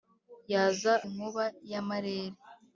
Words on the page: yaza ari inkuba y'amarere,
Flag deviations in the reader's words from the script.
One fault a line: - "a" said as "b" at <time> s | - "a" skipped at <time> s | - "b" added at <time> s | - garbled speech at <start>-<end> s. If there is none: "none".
- "ari" skipped at 0.9 s